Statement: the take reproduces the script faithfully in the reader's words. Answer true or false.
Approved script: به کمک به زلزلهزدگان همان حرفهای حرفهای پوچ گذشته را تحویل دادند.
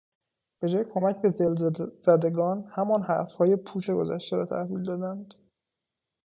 false